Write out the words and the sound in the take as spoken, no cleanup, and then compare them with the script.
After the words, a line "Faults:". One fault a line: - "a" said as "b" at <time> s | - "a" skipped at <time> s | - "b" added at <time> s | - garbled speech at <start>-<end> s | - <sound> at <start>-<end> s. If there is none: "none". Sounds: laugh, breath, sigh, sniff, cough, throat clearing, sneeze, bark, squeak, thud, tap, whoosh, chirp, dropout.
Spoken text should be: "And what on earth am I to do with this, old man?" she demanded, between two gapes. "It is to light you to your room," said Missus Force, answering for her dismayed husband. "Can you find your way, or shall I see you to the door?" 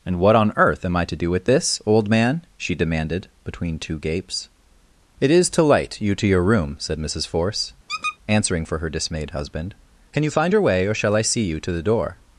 "And what on earth am I to do with this, old man?" she demanded, between two gapes. "It is to light you to your room," said Missus Force, answering for her dismayed husband. "Can you find your way, or shall I see you to the door?"
Faults:
- squeak at 7.9-8.2 s